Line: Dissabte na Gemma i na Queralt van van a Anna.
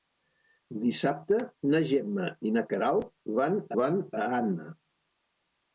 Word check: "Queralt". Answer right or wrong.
right